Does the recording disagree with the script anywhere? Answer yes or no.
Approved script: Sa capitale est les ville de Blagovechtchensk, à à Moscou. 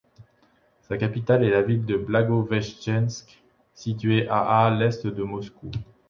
yes